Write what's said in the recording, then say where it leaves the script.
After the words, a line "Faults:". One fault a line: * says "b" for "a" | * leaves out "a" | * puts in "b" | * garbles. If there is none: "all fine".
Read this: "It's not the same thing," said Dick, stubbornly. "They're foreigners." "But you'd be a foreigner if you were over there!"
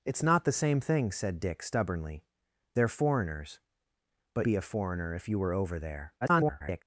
"It's not the same thing," said Dick, stubbornly. "They're foreigners." "But be a foreigner if you were over there!" [garbled]
Faults:
* leaves out "you'd"
* garbles